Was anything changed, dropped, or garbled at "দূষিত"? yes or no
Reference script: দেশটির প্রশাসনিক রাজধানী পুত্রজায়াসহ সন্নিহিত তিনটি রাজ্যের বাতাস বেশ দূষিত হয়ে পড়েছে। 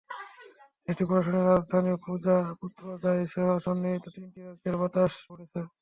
yes